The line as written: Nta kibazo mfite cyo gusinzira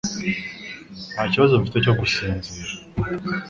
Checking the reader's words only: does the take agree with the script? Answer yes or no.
yes